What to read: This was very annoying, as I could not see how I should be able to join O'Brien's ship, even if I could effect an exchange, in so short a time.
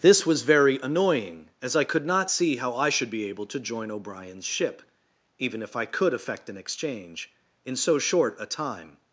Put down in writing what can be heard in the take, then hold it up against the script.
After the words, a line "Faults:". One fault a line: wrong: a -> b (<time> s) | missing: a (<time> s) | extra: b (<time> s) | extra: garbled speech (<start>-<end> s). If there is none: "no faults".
This was very annoying, as I could not see how I should be able to join O'Brien's ship, even if I could effect an exchange, in so short a time.
Faults:
no faults